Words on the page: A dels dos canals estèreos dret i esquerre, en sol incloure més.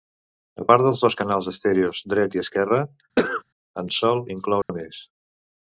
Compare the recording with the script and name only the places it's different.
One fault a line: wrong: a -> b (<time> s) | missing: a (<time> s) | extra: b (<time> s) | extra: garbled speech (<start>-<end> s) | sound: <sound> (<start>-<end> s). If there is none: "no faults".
extra: part (0.7 s)
sound: cough (3.2-3.4 s)
sound: dropout (4.6-4.7 s)